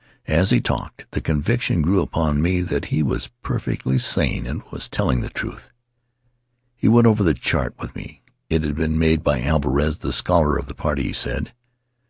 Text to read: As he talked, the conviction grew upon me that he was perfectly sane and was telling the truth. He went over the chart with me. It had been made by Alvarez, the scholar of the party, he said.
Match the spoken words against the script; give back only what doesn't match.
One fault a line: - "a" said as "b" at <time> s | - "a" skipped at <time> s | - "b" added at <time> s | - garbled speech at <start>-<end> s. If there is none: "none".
none